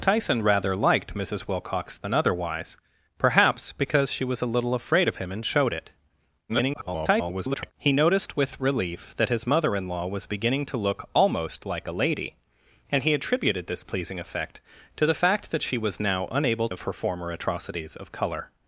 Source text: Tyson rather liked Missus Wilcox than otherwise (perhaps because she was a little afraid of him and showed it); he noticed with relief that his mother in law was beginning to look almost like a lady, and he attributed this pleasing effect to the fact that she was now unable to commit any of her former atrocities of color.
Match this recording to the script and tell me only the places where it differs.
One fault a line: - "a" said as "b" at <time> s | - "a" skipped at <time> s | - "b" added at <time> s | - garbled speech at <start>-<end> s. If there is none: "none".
- garbled speech at 6.5-7.7 s
- "to commit any" skipped at 16.7 s